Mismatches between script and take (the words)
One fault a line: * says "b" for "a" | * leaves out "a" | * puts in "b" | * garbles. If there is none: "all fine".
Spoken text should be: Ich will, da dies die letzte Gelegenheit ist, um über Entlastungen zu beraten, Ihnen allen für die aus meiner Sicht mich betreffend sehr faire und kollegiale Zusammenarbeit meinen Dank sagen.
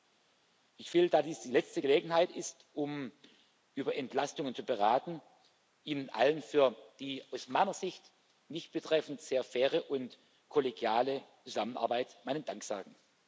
all fine